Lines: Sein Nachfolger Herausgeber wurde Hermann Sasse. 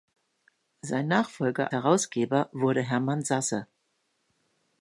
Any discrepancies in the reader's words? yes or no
no